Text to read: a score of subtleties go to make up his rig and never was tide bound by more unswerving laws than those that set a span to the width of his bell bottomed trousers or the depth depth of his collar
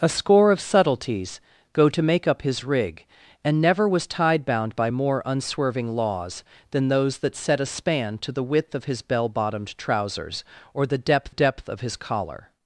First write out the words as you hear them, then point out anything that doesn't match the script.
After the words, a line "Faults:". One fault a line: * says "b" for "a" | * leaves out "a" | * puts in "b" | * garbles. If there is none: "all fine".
a score of subtleties go to make up his rig and never was tide bound by more unswerving laws than those that set a span to the width of his bell bottomed trousers or the depth depth of his collar
Faults:
all fine